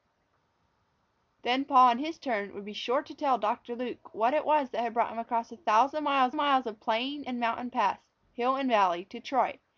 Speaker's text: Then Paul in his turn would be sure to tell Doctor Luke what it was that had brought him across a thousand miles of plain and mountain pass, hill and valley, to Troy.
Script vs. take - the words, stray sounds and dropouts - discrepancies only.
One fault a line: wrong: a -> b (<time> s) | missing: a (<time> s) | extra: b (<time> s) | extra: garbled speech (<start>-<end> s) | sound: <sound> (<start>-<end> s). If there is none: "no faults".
extra: miles (6.3 s)